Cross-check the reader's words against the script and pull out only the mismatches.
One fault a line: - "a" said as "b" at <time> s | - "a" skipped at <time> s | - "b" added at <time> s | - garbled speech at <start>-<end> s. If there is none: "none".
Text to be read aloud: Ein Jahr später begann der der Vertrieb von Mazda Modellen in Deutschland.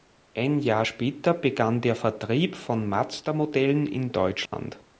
- "der" skipped at 1.9 s